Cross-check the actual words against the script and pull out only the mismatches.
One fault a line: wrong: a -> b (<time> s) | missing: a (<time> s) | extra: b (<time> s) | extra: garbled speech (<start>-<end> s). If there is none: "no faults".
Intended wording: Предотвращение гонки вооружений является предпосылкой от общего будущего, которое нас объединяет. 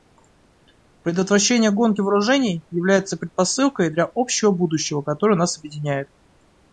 wrong: от -> для (3.9 s)